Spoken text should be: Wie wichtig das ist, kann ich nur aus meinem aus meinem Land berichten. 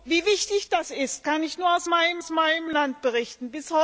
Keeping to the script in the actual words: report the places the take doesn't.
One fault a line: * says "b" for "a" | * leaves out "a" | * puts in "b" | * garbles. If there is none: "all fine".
all fine